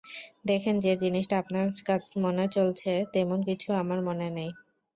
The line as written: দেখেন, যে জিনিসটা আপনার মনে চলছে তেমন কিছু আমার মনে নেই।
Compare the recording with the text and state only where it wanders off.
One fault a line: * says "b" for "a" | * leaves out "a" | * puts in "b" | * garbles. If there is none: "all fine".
all fine